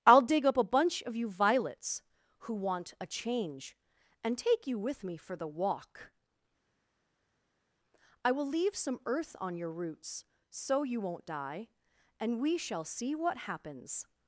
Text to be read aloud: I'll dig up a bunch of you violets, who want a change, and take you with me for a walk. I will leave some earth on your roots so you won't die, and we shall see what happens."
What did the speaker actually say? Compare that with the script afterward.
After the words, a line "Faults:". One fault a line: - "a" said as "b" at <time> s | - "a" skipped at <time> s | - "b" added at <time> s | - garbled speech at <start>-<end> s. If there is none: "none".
I'll dig up a bunch of you violets, who want a change, and take you with me for the walk. I will leave some earth on your roots so you won't die, and we shall see what happens."
Faults:
- "a" said as "the" at 5.3 s